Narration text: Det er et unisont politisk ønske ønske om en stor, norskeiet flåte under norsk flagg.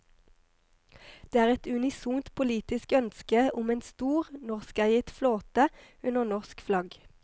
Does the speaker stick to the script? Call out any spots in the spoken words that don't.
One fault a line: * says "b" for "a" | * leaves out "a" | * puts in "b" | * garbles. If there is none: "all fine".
* leaves out "ønske"